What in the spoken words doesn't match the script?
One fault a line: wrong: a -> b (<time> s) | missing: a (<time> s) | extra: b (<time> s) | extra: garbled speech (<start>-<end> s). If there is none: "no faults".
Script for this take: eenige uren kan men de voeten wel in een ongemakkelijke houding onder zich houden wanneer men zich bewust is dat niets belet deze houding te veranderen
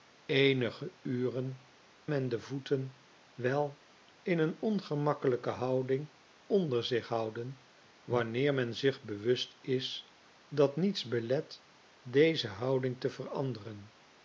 missing: kan (1.6 s)